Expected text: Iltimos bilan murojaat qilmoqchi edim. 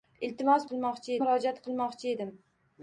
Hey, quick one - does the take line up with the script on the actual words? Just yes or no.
no